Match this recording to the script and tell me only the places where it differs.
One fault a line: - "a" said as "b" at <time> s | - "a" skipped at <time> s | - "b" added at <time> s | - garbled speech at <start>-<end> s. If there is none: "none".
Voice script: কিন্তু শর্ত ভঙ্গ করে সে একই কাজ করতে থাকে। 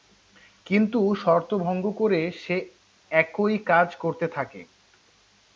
none